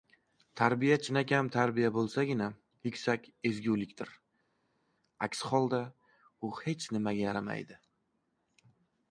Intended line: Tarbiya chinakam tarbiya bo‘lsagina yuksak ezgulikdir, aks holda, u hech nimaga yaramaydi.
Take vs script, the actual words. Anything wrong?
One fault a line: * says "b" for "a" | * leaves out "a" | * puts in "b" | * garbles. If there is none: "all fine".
all fine